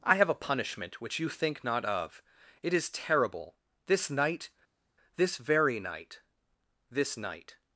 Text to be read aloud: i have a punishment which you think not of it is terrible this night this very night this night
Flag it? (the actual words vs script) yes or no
no